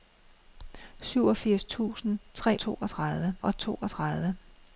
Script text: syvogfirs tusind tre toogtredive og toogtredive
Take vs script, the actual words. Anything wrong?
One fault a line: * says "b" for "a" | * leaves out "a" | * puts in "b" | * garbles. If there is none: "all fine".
all fine